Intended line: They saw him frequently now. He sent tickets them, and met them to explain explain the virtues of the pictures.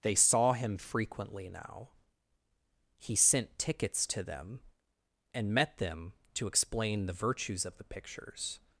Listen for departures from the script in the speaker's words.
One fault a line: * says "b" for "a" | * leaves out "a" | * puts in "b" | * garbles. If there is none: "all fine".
* puts in "to"
* leaves out "explain"